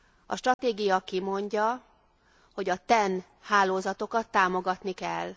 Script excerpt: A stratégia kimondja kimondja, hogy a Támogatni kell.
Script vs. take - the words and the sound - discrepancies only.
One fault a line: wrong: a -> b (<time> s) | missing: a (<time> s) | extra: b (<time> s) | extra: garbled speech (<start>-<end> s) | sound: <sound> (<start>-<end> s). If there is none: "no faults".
sound: dropout (0.5-0.6 s)
missing: kimondja (1.8 s)
extra: TEN hálózatokat (2.9 s)